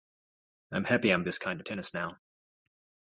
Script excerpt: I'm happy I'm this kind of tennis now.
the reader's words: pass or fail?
pass